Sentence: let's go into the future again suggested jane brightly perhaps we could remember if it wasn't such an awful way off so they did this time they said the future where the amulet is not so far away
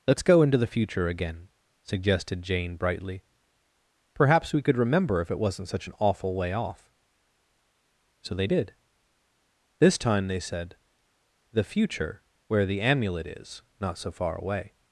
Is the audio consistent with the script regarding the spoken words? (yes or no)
yes